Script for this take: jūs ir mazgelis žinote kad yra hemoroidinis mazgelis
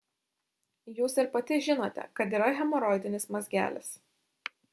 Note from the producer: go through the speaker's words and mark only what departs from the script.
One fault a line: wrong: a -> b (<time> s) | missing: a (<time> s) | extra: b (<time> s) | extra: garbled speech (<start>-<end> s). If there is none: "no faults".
wrong: mazgelis -> pati (1.4 s)